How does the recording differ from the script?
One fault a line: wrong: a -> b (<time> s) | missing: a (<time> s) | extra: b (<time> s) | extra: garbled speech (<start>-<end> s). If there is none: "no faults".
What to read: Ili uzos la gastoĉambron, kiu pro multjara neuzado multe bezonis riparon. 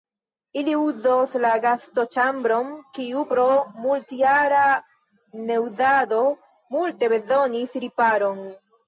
no faults